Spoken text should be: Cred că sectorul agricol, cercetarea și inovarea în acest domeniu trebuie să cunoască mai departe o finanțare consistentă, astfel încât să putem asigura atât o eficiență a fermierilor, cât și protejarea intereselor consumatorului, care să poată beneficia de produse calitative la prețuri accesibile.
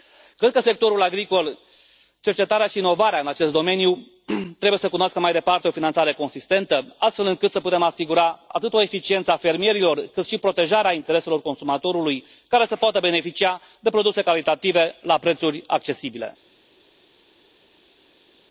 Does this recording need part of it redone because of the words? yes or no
no